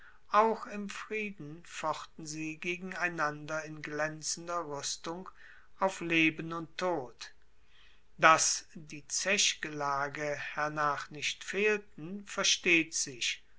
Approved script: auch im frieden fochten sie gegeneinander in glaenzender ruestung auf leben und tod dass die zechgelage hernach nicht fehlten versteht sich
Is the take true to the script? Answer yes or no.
yes